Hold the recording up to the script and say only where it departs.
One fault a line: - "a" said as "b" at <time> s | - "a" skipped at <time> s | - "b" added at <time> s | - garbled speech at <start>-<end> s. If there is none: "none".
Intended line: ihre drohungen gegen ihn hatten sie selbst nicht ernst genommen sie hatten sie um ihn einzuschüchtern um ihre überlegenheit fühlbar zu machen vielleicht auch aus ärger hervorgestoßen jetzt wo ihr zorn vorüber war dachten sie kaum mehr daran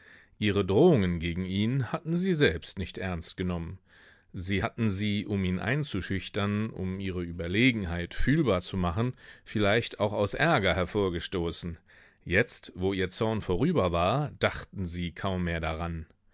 none